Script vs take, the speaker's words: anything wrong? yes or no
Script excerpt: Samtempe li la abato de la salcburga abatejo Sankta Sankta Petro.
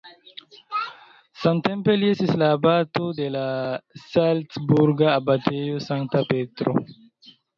yes